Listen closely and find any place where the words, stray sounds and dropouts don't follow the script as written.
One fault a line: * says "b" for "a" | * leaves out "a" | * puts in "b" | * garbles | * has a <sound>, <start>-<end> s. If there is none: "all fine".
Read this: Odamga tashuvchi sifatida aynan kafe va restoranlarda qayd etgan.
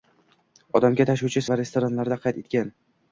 * leaves out "sifatida aynan kafe"